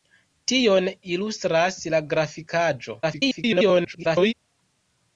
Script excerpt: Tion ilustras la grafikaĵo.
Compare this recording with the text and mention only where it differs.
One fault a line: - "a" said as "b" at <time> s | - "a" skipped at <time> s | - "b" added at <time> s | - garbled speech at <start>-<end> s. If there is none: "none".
- garbled speech at 3.0-4.3 s